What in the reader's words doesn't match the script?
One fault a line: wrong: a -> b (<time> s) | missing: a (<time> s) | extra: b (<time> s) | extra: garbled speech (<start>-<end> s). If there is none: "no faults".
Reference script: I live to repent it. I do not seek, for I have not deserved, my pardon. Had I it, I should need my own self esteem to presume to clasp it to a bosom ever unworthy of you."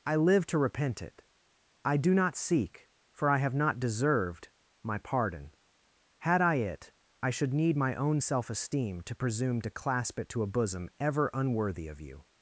no faults